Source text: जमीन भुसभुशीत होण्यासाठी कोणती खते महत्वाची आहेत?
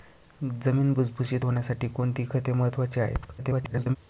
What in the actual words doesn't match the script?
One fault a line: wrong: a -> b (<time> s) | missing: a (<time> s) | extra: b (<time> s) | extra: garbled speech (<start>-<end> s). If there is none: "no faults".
extra: garbled speech (3.4-4.0 s)